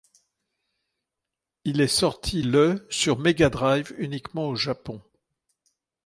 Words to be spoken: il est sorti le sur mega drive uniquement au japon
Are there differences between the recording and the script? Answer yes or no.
no